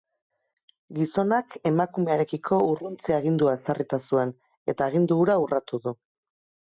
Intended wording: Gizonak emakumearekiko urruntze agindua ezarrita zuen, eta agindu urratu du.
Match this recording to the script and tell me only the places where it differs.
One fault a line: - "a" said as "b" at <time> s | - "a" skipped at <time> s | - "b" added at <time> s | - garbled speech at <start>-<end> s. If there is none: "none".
- "hura" added at 5.2 s